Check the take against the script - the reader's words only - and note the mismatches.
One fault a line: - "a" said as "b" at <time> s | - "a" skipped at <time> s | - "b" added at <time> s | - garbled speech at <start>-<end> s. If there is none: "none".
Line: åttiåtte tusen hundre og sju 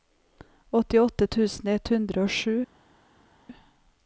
- "ett" added at 1.7 s